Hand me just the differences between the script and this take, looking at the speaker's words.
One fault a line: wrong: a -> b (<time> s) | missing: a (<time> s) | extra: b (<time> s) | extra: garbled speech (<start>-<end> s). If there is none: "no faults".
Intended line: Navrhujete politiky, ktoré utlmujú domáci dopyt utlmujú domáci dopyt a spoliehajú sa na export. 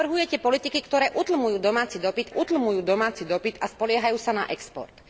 no faults